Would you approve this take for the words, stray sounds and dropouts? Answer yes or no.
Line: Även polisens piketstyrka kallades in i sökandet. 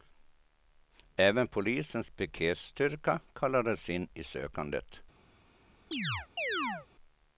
no